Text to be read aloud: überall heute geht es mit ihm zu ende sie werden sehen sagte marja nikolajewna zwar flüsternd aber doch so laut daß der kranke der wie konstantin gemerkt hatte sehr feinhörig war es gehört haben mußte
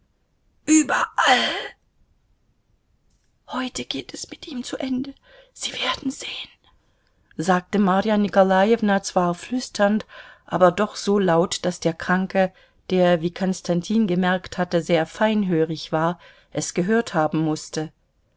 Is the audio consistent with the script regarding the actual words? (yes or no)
yes